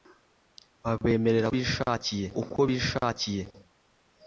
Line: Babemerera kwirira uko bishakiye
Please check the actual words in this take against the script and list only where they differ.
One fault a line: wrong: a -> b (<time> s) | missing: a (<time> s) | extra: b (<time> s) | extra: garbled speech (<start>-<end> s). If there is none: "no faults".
wrong: kwirira -> bishakiye (1.5 s)